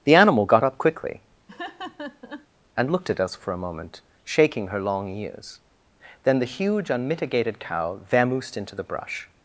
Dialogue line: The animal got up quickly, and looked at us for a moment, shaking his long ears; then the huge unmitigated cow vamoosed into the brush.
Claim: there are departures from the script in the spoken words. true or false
true